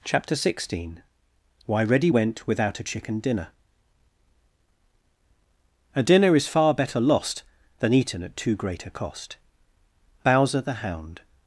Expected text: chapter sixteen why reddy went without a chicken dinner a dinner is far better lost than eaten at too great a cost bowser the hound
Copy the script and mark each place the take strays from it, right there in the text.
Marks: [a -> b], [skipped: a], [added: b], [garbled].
chapter sixteen why reddy went without a chicken dinner a dinner is far better lost than eaten at too great a cost bowser the hound